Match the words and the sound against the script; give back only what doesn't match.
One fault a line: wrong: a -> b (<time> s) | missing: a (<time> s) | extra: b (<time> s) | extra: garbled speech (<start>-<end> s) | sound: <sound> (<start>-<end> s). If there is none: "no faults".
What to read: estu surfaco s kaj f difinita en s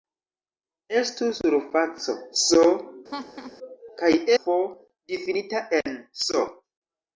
sound: laugh (3.1-3.6 s)